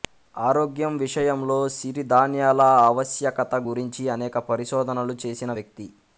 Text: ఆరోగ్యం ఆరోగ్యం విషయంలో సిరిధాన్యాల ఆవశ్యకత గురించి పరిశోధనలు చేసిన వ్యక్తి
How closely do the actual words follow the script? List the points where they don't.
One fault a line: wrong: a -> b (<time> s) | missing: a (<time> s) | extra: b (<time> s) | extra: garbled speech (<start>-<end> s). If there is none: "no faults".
missing: ఆరోగ్యం (0.9 s)
extra: అనేక (4.1 s)